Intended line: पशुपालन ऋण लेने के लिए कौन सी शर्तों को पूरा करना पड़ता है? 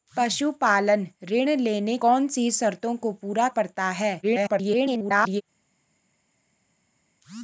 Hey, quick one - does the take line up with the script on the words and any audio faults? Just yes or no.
no